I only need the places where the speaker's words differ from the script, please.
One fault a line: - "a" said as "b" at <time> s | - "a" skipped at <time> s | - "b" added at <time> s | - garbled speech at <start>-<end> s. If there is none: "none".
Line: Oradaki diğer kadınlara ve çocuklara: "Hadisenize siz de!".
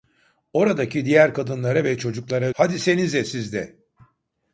none